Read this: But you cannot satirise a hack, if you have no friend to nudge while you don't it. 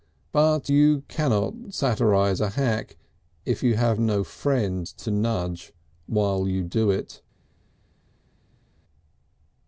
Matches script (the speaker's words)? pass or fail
fail